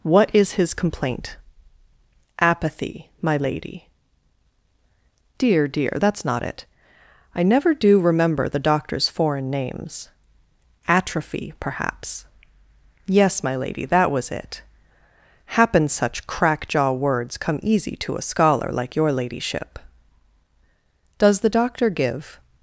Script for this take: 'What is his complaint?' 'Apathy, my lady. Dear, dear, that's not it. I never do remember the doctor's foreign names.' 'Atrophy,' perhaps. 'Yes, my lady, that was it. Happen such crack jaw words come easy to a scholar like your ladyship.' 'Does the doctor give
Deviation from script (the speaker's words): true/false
false